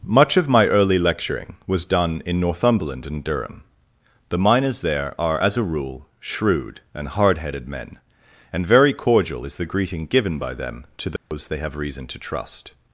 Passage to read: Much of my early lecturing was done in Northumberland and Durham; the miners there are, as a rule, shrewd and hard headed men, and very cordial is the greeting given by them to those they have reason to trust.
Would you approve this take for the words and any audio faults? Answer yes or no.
no